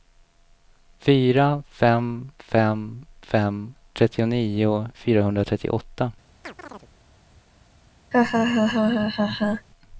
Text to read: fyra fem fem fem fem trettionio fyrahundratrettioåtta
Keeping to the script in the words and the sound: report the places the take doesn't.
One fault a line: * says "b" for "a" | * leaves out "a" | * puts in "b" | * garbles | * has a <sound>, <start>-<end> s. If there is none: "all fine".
* leaves out "fem"
* has a chirp, 6.4-6.9 s
* has a laugh, 8.1-9.7 s